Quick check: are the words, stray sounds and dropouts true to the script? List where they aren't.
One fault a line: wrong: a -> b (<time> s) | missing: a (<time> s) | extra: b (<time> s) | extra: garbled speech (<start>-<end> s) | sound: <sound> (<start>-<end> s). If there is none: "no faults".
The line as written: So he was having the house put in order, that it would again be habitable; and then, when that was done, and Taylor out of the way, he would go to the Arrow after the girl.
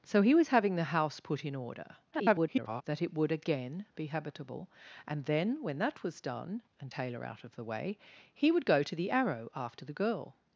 extra: garbled speech (2.1-2.8 s)